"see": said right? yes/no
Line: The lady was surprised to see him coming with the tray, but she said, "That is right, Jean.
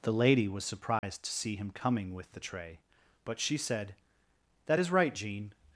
yes